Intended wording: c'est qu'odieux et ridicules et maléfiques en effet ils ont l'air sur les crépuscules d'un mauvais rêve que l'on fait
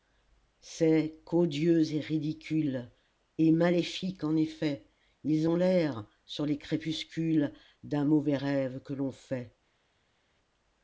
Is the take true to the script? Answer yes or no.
yes